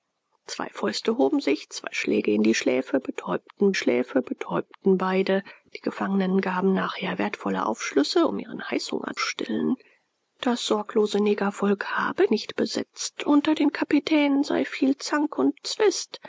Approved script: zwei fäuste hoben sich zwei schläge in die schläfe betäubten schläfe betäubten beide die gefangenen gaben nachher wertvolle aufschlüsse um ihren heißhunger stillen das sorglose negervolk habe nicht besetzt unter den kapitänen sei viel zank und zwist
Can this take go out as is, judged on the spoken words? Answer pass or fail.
pass